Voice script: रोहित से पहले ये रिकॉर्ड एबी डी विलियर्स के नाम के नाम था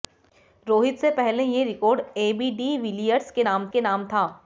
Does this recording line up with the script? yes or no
yes